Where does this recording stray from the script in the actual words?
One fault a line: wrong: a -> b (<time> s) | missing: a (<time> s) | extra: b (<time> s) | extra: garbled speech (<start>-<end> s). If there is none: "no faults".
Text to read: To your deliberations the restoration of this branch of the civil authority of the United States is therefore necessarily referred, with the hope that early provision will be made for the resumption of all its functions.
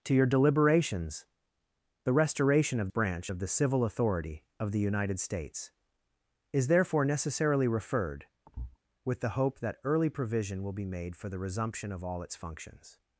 missing: this (2.9 s)